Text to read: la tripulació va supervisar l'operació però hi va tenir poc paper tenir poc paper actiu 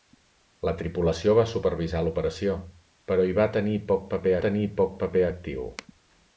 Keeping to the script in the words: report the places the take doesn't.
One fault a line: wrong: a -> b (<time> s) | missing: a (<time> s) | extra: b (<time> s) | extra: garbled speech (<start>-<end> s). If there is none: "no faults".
no faults